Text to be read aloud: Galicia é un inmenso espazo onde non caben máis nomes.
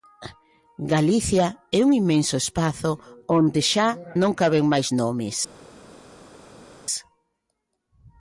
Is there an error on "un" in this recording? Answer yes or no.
no